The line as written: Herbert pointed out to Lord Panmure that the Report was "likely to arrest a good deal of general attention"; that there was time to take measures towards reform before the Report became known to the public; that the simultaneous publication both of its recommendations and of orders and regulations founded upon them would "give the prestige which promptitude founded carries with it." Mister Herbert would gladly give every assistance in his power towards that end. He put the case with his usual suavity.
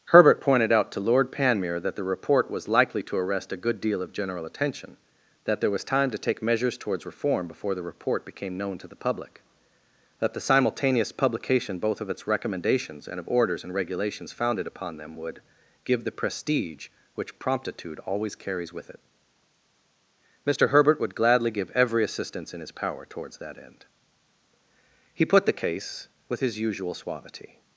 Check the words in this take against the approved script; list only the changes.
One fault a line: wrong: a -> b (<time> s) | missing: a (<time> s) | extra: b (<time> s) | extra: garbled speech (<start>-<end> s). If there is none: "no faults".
wrong: founded -> always (18.0 s)